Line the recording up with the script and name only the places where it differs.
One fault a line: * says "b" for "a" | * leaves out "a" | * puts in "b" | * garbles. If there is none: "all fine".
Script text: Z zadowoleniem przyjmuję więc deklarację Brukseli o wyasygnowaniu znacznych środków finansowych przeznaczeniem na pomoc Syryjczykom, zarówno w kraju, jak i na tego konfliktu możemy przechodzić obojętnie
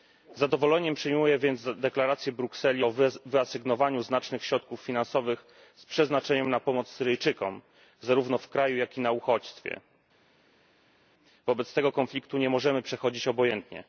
* puts in "z"
* puts in "uchodźstwie Wobec"
* puts in "nie"